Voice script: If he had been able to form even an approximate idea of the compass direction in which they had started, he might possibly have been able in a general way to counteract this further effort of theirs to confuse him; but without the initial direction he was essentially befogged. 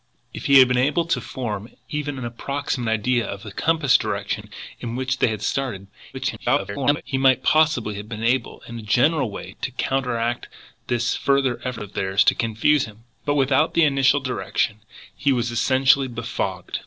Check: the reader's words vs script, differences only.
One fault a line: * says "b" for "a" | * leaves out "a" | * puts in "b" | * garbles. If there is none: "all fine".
* garbles